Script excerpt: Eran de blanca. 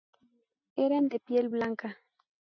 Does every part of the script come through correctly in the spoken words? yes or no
no